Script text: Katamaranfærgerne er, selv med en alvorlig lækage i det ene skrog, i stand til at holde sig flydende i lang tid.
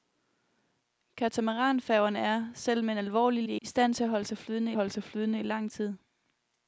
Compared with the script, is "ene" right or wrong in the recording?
wrong